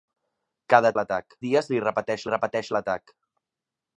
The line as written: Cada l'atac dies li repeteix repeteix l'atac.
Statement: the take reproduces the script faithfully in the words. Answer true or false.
true